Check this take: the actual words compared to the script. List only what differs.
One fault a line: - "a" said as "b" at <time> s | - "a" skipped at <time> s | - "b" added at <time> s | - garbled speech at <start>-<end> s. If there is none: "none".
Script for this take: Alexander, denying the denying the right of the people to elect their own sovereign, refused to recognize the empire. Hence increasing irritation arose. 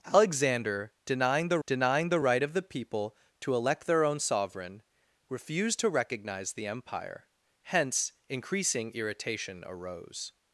none